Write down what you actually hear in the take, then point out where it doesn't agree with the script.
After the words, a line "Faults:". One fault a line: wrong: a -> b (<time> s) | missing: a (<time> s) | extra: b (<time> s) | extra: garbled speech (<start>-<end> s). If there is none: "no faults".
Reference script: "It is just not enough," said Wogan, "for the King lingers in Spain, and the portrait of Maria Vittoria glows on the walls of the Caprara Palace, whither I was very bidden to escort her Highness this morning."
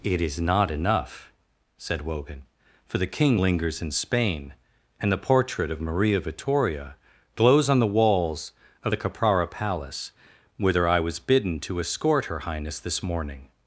"It is not enough," said Wogan, "for the King lingers in Spain, and the portrait of Maria Vittoria glows on the walls of the Caprara Palace, whither I was bidden to escort her Highness this morning."
Faults:
missing: just (0.4 s)
missing: very (11.2 s)